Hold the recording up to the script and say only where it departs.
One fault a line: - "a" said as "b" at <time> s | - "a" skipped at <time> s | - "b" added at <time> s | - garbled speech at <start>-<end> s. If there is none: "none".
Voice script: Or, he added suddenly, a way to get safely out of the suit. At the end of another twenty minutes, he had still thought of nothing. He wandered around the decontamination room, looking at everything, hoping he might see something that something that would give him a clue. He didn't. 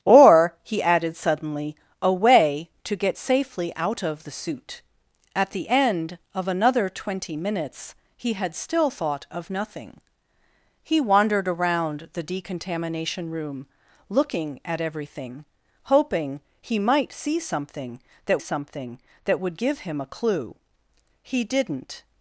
none